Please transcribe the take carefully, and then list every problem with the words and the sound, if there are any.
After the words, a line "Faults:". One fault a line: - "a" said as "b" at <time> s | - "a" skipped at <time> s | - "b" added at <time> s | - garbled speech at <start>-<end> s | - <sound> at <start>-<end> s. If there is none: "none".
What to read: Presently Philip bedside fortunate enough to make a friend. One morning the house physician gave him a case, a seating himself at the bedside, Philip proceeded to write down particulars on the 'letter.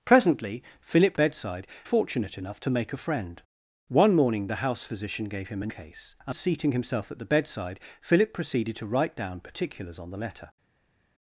Presently Philip bedside fortunate enough to make a friend. One morning the house physician gave him a case, a seating himself at the bedside, Philip proceeded to write down particulars on the 'letter.
Faults:
none